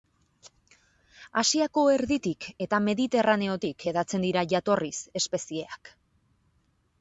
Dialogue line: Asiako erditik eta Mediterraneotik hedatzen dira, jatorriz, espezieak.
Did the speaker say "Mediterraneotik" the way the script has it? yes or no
yes